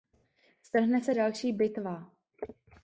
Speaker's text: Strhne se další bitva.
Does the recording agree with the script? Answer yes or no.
yes